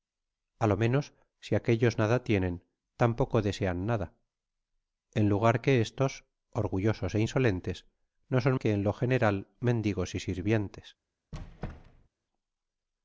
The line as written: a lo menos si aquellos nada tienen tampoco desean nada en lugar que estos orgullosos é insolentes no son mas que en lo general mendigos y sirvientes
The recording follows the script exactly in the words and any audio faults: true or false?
false